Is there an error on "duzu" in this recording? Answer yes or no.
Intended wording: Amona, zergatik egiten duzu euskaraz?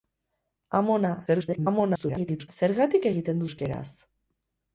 yes